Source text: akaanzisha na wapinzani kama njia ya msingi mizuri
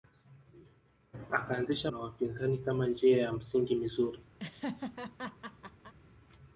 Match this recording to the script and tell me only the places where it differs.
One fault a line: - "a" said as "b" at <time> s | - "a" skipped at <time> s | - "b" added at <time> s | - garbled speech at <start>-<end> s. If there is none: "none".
none